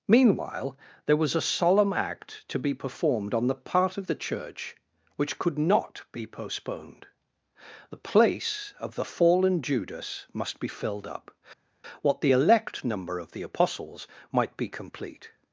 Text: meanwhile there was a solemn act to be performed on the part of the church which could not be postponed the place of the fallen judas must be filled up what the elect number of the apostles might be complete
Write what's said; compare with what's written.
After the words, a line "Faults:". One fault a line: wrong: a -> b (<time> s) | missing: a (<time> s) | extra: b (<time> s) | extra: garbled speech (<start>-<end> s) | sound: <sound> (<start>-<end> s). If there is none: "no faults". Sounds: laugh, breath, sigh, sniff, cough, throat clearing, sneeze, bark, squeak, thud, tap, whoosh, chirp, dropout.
meanwhile there was a solemn act to be performed on the part of the church which could not be postponed the place of the fallen judas must be filled up what the elect number of the apostles might be complete
Faults:
no faults